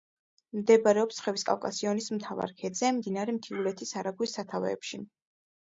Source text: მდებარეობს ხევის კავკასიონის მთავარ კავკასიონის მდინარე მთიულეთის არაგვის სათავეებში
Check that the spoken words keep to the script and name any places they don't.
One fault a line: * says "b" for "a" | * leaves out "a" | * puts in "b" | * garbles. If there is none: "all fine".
* says "ქედზე" for "კავკასიონის"